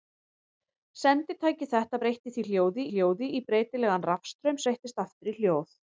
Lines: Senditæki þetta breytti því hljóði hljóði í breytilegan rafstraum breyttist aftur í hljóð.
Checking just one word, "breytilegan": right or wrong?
right